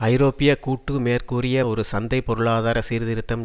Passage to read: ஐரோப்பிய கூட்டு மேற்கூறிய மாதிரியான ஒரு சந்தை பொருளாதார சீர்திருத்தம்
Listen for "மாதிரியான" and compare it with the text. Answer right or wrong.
wrong